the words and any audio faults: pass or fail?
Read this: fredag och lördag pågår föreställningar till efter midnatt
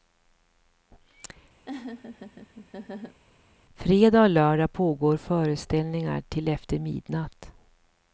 fail